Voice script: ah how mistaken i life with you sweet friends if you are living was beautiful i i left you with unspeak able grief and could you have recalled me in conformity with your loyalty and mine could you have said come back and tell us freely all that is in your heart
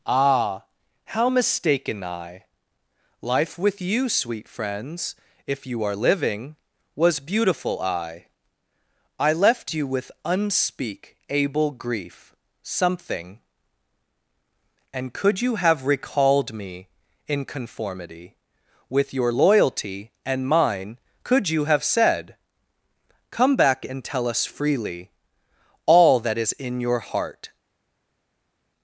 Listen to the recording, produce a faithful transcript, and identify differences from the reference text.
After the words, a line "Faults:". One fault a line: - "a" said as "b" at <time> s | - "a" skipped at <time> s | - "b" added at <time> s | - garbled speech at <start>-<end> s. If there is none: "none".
ah how mistaken i life with you sweet friends if you are living was beautiful i i left you with unspeak able grief something and could you have recalled me in conformity with your loyalty and mine could you have said come back and tell us freely all that is in your heart
Faults:
- "something" added at 12.6 s